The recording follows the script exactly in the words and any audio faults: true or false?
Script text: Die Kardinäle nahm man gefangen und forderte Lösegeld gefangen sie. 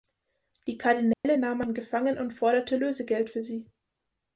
false